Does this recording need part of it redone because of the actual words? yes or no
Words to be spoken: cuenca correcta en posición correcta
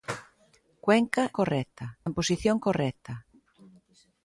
no